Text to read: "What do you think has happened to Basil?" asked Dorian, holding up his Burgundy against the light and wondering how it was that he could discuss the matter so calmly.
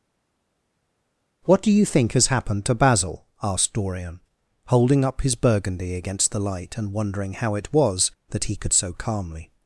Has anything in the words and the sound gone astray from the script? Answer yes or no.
yes